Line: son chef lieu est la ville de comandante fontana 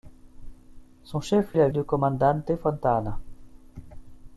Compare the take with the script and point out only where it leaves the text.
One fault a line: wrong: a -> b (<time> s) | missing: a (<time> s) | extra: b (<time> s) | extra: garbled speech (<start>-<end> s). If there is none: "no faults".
missing: lieu (1.6 s)
missing: ville (1.7 s)